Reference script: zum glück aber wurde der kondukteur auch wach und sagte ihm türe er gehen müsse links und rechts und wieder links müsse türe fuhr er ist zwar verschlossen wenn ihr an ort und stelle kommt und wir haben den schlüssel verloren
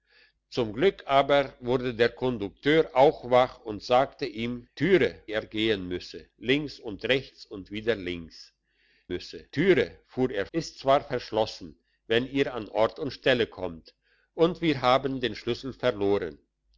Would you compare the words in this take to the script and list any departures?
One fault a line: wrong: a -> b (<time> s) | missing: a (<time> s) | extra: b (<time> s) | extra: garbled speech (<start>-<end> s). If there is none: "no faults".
no faults